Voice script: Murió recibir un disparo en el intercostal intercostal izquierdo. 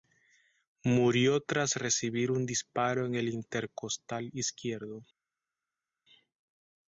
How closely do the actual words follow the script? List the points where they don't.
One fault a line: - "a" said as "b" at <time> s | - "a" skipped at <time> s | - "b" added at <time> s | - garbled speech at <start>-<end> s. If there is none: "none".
- "tras" added at 1.4 s
- "intercostal" skipped at 4.3 s